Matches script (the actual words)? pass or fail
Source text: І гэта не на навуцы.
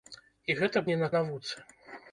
pass